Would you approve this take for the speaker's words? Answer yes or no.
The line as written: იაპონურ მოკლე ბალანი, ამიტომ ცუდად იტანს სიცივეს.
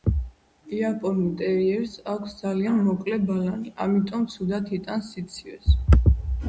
no